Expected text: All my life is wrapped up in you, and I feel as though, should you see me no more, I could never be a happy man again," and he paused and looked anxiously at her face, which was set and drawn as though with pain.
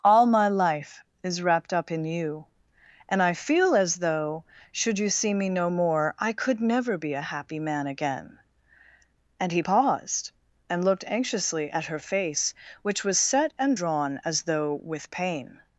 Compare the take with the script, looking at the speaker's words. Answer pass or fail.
pass